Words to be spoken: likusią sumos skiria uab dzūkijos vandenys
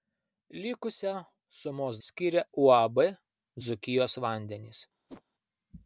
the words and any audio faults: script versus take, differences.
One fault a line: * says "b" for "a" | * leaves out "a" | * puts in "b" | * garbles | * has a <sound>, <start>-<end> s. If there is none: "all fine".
* has a whoosh, 5.1-5.2 s